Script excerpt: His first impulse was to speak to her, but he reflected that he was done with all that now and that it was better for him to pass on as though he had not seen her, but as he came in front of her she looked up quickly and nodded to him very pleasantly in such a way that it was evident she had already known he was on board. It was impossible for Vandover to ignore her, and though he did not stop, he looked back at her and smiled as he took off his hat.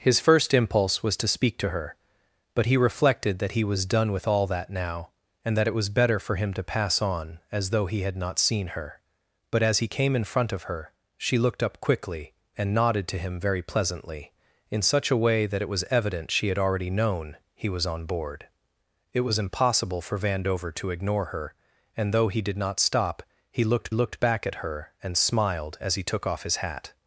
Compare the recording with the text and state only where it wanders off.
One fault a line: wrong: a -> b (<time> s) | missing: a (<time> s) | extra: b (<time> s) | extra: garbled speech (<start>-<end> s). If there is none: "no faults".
extra: looked (23.9 s)